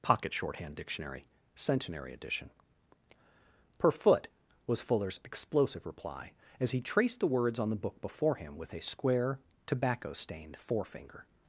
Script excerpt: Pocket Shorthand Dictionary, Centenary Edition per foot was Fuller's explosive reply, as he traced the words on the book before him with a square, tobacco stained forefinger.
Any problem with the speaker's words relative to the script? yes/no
no